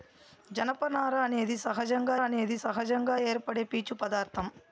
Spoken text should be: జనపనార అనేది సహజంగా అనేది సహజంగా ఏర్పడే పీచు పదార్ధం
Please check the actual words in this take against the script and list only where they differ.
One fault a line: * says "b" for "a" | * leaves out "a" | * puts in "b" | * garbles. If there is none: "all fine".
all fine